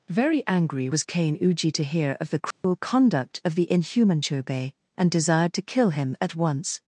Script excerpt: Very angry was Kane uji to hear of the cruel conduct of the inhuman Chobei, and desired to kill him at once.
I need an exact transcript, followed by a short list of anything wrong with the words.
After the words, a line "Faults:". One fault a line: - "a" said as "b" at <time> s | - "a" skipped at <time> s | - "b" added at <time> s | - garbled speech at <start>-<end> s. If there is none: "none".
Very angry was Kane uji to hear of the cruel conduct of the inhuman Chobei, and desired to kill him at once.
Faults:
none